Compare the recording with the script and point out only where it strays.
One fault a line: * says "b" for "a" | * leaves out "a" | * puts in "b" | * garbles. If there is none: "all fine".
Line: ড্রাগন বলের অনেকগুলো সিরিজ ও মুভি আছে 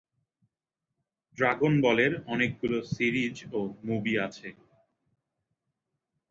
all fine